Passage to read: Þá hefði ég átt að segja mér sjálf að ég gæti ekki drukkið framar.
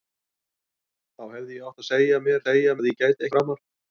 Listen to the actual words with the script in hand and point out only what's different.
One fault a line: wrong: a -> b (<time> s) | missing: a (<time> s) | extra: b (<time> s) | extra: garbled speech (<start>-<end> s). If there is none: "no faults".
wrong: sjálf -> segja (2.4 s)
missing: ekki drukkið (3.3 s)